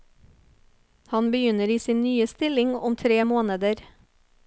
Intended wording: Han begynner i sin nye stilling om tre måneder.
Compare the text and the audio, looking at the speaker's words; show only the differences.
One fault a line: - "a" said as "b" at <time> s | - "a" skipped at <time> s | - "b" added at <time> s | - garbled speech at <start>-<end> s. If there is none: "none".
none